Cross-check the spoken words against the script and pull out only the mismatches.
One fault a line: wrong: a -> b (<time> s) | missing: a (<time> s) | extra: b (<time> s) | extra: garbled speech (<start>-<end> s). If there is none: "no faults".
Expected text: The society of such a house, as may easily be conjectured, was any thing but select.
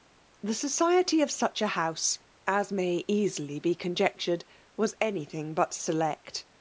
no faults